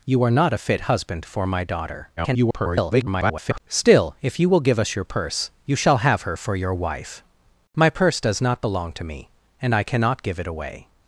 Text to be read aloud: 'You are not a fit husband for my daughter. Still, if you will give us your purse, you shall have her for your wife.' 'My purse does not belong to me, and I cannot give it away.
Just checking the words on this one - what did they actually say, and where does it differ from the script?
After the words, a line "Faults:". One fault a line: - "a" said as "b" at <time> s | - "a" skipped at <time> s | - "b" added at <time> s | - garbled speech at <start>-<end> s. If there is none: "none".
'You are not a fit husband for my daughter. [garbled] Still, if you will give us your purse, you shall have her for your wife.' 'My purse does not belong to me, and I cannot give it away.
Faults:
- garbled speech at 2.2-3.6 s